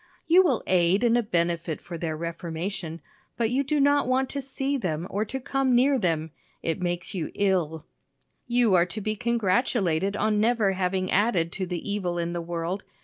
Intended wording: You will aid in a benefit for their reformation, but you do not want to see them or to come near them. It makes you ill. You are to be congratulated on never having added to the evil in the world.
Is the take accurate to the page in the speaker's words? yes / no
yes